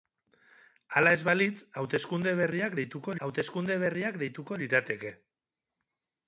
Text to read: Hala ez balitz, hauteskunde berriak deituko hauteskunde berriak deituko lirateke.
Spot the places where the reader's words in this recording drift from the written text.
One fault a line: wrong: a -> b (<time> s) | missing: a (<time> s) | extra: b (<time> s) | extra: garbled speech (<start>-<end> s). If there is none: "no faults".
no faults